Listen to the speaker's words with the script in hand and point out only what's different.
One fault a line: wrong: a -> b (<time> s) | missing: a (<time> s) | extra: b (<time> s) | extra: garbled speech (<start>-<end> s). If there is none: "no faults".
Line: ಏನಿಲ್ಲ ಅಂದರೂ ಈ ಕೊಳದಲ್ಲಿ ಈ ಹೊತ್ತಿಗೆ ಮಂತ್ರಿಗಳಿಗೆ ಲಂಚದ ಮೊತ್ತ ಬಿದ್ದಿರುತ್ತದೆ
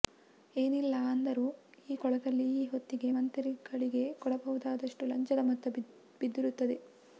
extra: ಕೊಡಬಹುದಾದಷ್ಟು (4.2 s)